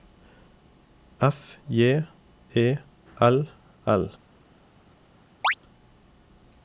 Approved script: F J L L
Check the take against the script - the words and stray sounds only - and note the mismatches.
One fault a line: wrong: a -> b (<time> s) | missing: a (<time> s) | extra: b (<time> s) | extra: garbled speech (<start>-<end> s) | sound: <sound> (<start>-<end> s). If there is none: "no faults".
extra: E (2.6 s)
sound: chirp (5.4-5.5 s)